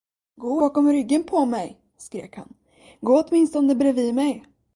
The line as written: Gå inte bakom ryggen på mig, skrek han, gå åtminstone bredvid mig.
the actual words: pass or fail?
fail